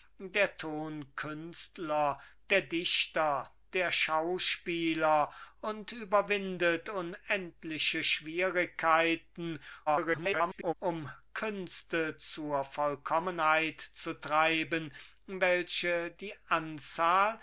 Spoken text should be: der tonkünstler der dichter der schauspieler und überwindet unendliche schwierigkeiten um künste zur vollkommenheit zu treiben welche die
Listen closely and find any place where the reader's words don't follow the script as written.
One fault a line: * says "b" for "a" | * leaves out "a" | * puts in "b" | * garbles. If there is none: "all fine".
* garbles